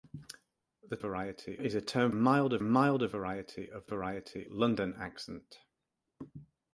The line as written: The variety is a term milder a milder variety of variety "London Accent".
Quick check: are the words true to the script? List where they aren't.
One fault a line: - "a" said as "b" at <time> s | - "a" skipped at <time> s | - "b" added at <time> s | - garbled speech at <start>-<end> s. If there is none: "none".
none